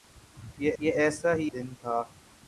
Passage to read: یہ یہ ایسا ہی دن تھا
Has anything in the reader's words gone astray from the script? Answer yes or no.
no